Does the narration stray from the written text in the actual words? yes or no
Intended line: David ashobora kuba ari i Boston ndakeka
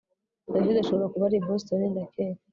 no